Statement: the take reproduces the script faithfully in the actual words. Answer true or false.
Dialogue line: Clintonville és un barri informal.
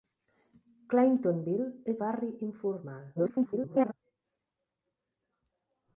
false